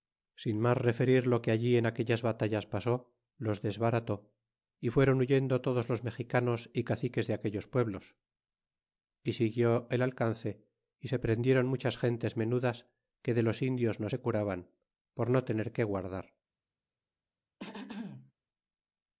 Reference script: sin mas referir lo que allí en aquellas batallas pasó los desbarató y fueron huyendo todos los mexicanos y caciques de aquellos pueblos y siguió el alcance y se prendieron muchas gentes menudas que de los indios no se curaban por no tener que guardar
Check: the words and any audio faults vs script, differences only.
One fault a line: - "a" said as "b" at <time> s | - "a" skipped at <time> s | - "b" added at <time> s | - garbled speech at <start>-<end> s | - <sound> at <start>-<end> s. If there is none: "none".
- throat clearing at 17.6-18.3 s